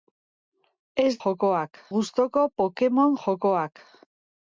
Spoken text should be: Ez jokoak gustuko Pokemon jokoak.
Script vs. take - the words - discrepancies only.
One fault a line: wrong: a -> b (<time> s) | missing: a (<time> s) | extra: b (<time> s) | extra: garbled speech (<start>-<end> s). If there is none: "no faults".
no faults